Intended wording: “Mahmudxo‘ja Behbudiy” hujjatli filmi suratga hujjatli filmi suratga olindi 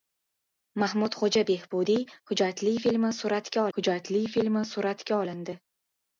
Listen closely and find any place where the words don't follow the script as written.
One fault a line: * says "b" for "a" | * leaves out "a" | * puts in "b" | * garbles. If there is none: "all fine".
all fine